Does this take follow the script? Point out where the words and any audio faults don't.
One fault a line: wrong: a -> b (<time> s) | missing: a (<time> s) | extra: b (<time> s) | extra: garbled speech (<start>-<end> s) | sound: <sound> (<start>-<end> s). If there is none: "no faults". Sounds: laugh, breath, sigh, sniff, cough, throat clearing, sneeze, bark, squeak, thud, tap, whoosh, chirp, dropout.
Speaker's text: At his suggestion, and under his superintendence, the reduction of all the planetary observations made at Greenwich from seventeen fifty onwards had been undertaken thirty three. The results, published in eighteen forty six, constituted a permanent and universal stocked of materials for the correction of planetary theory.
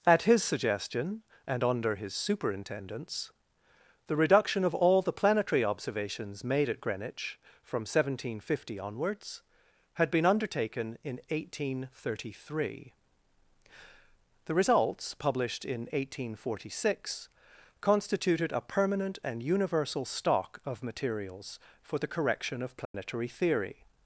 extra: in eighteen (11.0 s)
wrong: stocked -> stock (20.1 s)
sound: dropout (22.8-22.9 s)